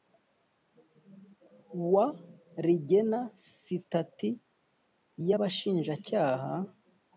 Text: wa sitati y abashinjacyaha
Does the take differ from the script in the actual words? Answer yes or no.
yes